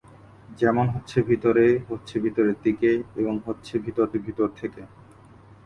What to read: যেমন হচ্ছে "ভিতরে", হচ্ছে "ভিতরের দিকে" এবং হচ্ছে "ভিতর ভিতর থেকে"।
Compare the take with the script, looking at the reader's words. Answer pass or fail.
pass